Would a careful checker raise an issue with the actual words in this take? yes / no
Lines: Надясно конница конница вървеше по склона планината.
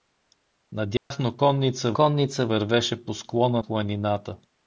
no